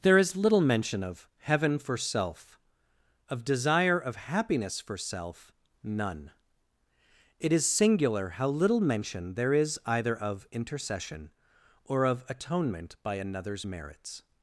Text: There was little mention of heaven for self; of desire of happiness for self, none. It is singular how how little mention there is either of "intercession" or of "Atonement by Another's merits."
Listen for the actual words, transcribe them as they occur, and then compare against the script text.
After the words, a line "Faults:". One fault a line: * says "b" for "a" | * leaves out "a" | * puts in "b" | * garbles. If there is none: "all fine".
There is little mention of heaven for self; of desire of happiness for self, none. It is singular how little mention there is either of "intercession" or of "Atonement by Another's merits."
Faults:
* says "is" for "was"
* leaves out "how"